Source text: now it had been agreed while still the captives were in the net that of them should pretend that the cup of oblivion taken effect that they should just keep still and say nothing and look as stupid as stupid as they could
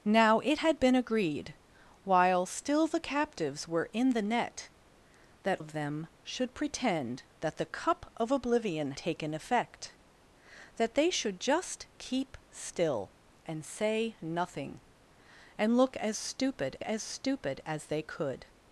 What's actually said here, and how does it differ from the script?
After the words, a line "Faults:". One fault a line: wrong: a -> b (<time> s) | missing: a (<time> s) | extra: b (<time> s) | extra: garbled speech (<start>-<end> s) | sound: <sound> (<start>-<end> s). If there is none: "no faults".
now it had been agreed while still the captives were in the net that of them should pretend that the cup of oblivion taken effect that they should just keep still and say nothing and look as stupid as stupid as they could
Faults:
no faults